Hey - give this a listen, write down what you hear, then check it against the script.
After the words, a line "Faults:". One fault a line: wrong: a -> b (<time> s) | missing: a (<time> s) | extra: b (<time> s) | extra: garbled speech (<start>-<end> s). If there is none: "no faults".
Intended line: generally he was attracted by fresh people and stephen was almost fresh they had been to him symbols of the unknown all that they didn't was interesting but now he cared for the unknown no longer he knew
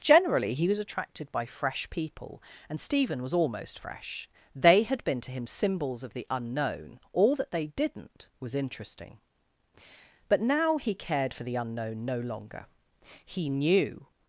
generally he was attracted by fresh people and stephen was almost fresh they had been to him symbols of the unknown all that they didn't was interesting but now he cared for the unknown no longer he knew
Faults:
no faults